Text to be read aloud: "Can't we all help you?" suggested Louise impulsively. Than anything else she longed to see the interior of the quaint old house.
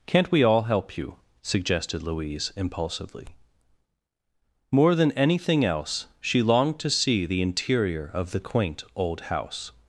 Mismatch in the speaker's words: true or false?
true